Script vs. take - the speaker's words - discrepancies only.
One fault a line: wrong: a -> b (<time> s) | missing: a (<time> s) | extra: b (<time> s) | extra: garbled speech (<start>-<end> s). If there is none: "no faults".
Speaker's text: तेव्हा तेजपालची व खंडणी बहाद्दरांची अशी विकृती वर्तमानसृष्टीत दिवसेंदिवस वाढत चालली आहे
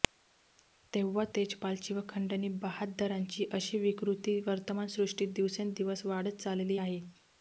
no faults